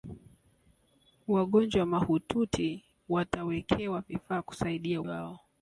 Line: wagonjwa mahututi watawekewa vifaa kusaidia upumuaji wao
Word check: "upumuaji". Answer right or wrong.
wrong